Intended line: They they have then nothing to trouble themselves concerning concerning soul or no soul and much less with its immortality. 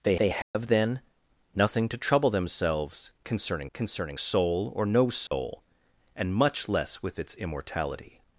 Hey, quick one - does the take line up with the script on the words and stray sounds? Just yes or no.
no